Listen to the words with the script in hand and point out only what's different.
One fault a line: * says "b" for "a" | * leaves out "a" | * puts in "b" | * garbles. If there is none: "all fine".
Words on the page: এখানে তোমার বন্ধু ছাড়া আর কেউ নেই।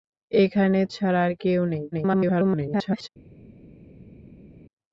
* leaves out "তোমার বন্ধু"
* garbles